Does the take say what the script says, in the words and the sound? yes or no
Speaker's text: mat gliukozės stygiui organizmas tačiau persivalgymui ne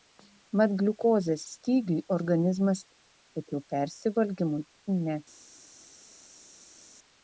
yes